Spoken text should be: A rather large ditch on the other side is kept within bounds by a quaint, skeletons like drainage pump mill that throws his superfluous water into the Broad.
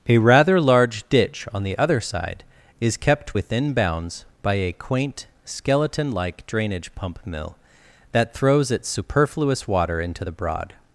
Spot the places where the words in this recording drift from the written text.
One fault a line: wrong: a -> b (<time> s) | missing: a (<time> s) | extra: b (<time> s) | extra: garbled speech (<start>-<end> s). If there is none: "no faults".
wrong: skeletons -> skeleton (5.4 s)
wrong: his -> its (8.7 s)